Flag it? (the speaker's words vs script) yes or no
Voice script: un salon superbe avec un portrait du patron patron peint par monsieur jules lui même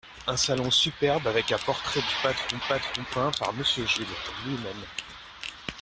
no